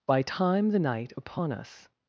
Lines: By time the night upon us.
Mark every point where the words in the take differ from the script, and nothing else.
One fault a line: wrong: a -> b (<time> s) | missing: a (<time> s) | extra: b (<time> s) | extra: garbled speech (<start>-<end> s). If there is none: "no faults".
no faults